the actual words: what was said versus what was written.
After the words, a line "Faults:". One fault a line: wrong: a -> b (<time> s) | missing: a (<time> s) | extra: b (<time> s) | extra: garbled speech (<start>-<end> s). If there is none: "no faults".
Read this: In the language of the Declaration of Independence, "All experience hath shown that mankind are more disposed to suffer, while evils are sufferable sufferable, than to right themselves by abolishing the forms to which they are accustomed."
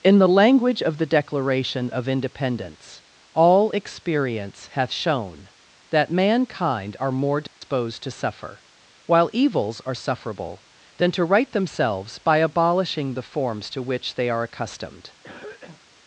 In the language of the Declaration of Independence, "All experience hath shown that mankind are more disposed to suffer, while evils are sufferable, than to right themselves by abolishing the forms to which they are accustomed."
Faults:
missing: sufferable (10.6 s)